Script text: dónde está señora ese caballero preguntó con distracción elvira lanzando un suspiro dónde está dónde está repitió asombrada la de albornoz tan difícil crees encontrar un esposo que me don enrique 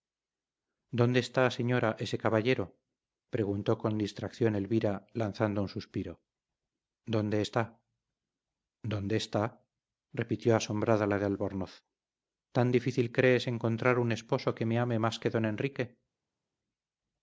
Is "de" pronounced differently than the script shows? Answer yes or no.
no